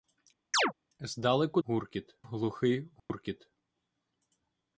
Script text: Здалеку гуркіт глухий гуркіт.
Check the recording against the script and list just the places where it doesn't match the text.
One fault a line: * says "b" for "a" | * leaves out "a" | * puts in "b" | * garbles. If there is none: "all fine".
all fine